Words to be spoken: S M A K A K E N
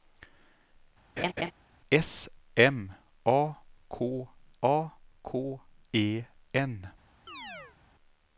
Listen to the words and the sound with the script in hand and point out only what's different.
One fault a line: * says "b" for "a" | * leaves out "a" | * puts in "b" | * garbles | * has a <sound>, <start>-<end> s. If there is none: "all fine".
* has a laugh, 1.2-1.5 s
* has a chirp, 7.3-7.8 s